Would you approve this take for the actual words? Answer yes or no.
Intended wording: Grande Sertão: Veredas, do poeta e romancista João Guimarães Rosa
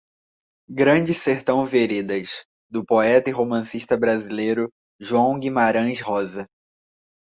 no